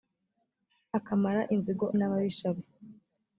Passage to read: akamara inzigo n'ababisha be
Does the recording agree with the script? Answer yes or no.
yes